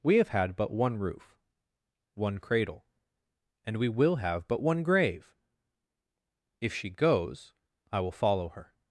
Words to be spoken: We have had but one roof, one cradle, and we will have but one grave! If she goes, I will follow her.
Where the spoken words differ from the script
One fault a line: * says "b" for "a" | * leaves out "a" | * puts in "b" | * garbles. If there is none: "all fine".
all fine